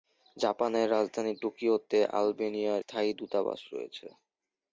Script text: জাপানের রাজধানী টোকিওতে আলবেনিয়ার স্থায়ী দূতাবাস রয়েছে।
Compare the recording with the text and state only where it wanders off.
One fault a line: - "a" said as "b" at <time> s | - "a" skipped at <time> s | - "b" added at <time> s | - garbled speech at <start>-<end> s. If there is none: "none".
none